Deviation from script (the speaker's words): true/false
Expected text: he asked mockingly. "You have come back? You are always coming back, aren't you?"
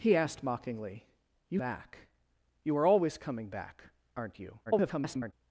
true